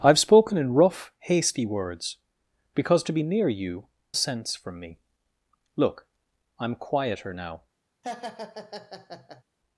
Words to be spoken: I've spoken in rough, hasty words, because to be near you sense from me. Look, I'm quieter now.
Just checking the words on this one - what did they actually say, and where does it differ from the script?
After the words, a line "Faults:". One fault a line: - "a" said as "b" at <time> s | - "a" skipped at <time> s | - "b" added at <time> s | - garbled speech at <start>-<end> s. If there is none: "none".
I've spoken in rough, hasty words, because to be near you sense from me. Look, I'm quieter now.
Faults:
none